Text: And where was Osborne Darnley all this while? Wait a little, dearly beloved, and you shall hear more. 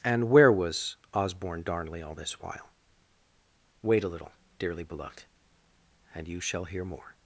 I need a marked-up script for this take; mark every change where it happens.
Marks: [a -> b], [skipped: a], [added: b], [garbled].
And where was Osborne Darnley all this while? Wait a little, dearly beloved, and you shall hear more.